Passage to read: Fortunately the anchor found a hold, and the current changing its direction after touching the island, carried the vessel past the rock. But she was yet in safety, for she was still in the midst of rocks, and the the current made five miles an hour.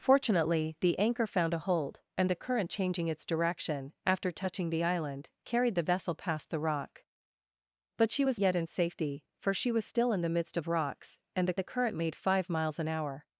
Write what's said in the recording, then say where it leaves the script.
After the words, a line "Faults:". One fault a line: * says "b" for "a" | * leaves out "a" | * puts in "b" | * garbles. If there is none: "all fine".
Fortunately the anchor found a hold, and the current changing its direction after touching the island, carried the vessel past the rock. But she was yet in safety, for she was still in the midst of rocks, and the the current made five miles an hour.
Faults:
all fine